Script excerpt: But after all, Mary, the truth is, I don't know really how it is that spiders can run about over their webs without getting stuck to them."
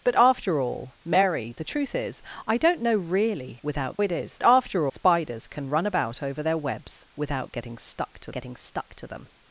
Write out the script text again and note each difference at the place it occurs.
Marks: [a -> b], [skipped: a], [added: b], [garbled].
But after all, Mary, the truth is, I don't know really [how -> without] it is [that -> after] spiders can run about over their webs without getting stuck to [added: getting stuck to] them."